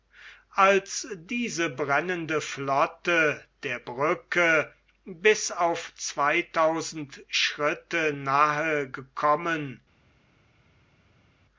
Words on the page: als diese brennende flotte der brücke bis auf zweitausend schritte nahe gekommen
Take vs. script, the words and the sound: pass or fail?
pass